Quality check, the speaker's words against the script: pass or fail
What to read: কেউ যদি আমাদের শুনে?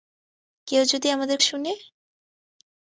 pass